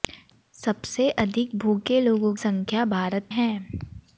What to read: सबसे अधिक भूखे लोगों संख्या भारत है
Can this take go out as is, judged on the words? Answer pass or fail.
pass